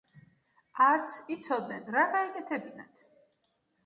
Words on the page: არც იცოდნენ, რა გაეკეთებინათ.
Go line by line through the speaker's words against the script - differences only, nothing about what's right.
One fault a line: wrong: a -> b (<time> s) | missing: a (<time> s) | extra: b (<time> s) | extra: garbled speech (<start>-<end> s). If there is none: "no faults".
no faults